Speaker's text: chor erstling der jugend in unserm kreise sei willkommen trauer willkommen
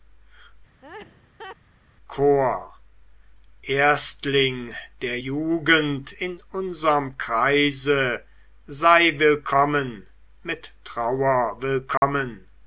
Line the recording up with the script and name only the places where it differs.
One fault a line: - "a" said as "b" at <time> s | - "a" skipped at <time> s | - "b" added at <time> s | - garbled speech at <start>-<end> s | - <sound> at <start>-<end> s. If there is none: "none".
- laugh at 0.8-1.6 s
- "mit" added at 10.4 s
- dropout at 12.0-12.0 s